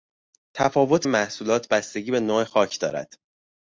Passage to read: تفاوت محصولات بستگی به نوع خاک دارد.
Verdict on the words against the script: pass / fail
pass